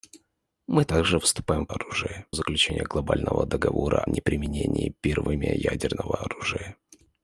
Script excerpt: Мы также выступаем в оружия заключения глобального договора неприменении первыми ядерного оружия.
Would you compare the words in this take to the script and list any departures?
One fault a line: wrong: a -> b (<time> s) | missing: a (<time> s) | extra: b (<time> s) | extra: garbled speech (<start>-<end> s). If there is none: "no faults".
no faults